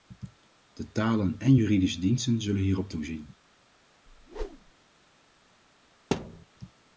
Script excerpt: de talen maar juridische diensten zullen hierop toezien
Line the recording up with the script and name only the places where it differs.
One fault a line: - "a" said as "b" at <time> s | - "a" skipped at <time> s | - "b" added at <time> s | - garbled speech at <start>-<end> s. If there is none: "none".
- "maar" said as "en" at 1.4 s